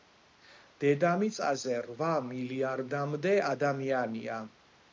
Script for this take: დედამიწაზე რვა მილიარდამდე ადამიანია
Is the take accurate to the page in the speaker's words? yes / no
yes